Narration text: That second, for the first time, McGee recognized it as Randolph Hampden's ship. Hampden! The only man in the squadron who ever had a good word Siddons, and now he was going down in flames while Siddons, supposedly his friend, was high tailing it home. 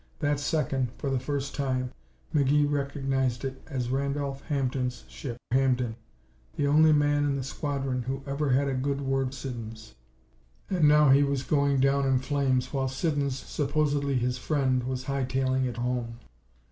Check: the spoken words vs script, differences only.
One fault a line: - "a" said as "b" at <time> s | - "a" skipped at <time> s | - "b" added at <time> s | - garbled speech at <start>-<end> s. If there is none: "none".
none